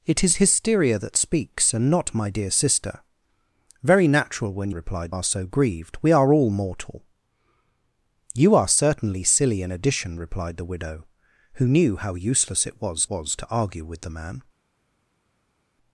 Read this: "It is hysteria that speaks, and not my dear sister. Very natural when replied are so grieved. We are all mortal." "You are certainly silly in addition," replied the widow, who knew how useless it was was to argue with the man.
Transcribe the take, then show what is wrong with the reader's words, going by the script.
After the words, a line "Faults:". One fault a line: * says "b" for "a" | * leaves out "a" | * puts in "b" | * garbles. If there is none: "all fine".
"It is hysteria that speaks, and not my dear sister. Very natural when replied are so grieved. We are all mortal." "You are certainly silly in addition," replied the widow, who knew how useless it was was to argue with the man.
Faults:
all fine